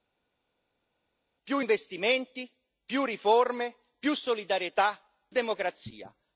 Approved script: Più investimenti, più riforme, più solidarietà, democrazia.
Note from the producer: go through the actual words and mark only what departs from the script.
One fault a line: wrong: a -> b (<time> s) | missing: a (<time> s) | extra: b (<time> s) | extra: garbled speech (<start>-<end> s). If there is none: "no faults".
no faults